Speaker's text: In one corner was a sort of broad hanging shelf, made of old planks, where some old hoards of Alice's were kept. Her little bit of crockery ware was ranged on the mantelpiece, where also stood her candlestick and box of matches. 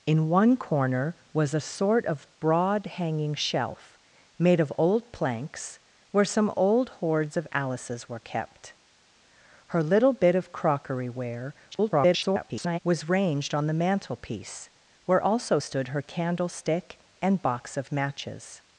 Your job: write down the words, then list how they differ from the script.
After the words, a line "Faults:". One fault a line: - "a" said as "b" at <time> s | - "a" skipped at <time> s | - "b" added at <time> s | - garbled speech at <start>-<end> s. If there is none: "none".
In one corner was a sort of broad hanging shelf, made of old planks, where some old hoards of Alice's were kept. Her little bit of crockery ware [garbled] was ranged on the mantelpiece, where also stood her candlestick and box of matches.
Faults:
- garbled speech at 11.7-12.8 s